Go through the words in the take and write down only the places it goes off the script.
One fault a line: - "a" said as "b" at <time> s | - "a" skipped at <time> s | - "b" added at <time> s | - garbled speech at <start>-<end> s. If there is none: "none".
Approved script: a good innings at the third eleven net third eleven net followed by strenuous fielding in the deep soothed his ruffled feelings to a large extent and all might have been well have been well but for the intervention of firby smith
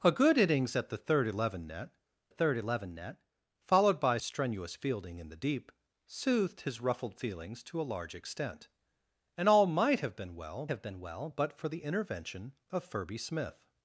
none